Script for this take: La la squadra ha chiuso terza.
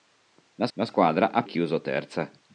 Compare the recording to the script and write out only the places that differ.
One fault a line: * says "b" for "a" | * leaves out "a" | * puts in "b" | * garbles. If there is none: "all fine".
all fine